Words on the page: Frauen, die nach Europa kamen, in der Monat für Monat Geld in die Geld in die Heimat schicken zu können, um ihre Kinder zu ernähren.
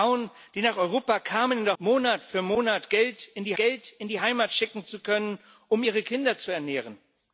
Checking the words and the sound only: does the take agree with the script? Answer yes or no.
yes